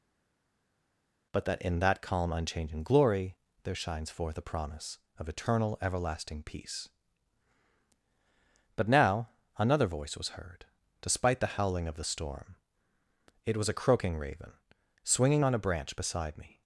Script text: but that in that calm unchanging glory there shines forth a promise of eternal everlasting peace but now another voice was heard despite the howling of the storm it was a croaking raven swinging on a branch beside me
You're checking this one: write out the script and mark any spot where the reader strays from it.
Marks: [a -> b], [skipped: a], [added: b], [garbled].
but that in that calm unchanging glory there shines forth a promise of eternal everlasting peace but now another voice was heard despite the howling of the storm it was a croaking raven swinging on a branch beside me